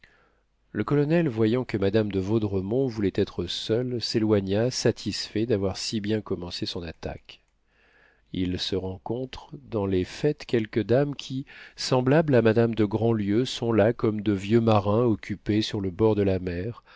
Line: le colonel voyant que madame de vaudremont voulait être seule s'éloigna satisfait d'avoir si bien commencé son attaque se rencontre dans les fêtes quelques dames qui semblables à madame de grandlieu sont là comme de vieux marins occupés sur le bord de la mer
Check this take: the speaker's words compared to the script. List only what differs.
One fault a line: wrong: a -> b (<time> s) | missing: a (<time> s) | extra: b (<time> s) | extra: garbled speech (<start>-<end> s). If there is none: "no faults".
extra: il (8.3 s)